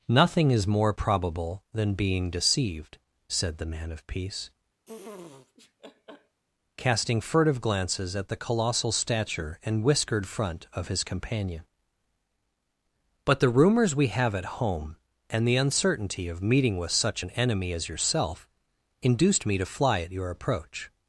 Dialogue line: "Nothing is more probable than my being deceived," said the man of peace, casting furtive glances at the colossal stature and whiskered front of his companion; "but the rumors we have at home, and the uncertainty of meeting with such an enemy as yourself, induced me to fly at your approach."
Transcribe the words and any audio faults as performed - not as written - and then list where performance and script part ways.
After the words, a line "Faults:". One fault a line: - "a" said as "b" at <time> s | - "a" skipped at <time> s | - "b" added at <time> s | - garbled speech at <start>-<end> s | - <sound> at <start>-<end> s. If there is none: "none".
"Nothing is more probable than being deceived," said the man of peace, casting furtive glances at the colossal stature and whiskered front of his companion; "but the rumors we have at home, and the uncertainty of meeting with such an enemy as yourself, induced me to fly at your approach."
Faults:
- "my" skipped at 1.9 s
- laugh at 4.9-6.4 s